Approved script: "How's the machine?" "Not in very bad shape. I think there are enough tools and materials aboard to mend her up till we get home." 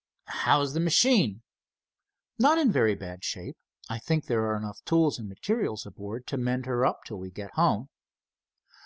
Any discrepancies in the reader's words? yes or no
no